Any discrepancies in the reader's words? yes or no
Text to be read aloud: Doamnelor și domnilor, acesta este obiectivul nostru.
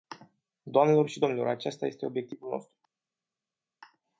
no